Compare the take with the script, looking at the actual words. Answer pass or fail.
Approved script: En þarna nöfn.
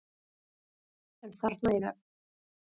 pass